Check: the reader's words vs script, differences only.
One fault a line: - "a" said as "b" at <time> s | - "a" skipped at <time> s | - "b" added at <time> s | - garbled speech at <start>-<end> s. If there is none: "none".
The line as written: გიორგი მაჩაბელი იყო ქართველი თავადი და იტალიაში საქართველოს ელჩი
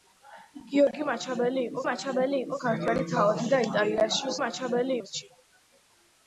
- "მაჩაბელი იყო" added at 1.9 s
- "საქართველოს" said as "მაჩაბელი" at 4.4 s